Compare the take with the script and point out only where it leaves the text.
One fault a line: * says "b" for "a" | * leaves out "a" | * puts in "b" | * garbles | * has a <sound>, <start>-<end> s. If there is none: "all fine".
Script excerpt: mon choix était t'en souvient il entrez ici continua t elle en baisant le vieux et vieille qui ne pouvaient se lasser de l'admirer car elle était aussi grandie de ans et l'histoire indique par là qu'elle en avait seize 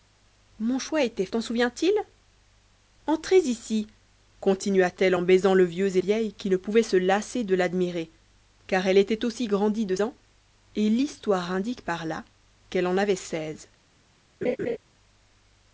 * has a laugh, 14.4-14.8 s